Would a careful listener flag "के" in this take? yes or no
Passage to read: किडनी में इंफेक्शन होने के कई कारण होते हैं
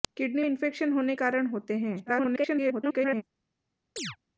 yes